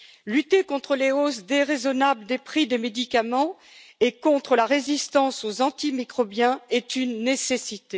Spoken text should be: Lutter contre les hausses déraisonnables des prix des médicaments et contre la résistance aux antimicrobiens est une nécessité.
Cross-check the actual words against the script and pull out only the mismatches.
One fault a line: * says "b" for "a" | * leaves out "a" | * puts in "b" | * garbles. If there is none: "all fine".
all fine